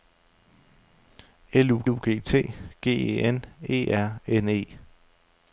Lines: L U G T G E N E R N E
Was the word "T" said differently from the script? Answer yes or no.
no